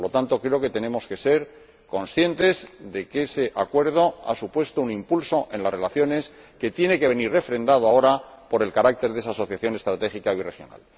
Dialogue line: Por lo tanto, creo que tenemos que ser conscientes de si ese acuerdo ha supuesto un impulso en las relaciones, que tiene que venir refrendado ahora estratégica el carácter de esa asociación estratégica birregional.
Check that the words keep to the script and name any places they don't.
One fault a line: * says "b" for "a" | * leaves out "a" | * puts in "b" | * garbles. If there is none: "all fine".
* says "que" for "si"
* says "por" for "estratégica"